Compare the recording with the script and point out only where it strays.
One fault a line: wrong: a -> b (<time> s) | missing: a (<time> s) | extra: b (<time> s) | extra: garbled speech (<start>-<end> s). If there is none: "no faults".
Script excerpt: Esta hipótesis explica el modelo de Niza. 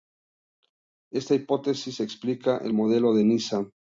no faults